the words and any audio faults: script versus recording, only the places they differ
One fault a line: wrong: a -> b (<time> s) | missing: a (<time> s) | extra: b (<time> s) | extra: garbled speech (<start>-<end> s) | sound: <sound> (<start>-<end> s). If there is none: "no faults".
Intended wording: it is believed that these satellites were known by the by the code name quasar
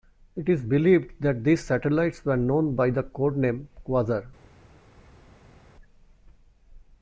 missing: by the (3.0 s)